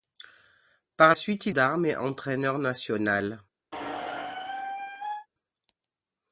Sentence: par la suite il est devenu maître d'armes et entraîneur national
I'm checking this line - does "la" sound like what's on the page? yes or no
no